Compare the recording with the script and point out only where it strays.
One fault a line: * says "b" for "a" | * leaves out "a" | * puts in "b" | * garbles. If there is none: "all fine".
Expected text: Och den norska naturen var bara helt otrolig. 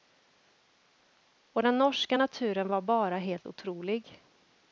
all fine